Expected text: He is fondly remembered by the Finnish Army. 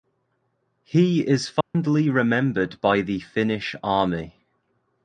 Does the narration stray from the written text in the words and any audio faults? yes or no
yes